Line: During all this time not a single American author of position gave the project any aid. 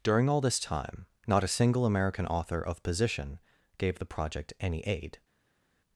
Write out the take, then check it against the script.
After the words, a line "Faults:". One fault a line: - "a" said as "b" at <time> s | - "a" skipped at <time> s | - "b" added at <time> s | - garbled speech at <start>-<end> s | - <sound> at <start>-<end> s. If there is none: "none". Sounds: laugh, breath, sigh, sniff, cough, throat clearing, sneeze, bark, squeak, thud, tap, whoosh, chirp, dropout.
During all this time not a single American author of position gave the project any aid.
Faults:
none